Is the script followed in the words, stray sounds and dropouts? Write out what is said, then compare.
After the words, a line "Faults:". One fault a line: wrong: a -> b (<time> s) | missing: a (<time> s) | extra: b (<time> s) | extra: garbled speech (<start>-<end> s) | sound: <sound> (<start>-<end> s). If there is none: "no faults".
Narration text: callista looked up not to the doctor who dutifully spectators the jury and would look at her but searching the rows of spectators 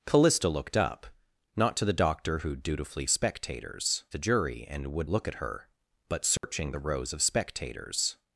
callista looked up not to the doctor who dutifully spectators the jury and would look at her but searching the rows of spectators
Faults:
sound: dropout (6.4-6.4 s)